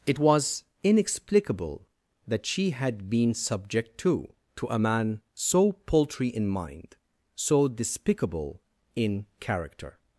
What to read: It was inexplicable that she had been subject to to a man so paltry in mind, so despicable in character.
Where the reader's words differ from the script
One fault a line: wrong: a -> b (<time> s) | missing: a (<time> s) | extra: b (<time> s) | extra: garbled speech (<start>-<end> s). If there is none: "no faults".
no faults